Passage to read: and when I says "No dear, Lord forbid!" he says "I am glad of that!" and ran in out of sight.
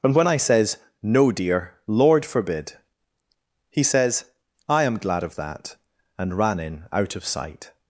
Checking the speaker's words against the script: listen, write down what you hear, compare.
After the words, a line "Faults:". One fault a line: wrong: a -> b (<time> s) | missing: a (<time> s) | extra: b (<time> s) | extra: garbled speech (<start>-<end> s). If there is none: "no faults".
and when I says "No dear, Lord forbid!" he says "I am glad of that!" and ran in out of sight.
Faults:
no faults